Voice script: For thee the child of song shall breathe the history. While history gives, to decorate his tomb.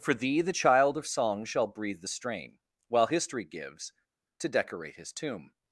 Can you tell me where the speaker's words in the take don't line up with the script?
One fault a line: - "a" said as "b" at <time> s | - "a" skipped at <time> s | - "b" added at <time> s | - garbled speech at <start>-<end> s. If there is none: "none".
- "history" said as "strain" at 2.1 s